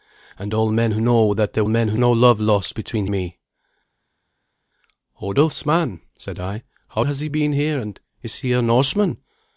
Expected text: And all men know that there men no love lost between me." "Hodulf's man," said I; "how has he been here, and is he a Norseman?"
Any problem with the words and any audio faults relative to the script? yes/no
no